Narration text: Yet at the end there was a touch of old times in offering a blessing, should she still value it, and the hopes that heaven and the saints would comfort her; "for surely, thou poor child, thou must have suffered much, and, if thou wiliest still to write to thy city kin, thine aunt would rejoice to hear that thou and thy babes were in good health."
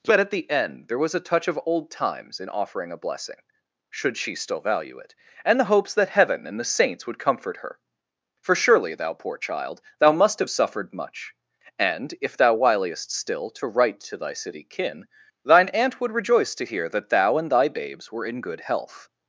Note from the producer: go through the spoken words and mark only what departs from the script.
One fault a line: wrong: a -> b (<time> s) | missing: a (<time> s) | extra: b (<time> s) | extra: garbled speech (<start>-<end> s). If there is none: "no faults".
wrong: Yet -> But (0.0 s)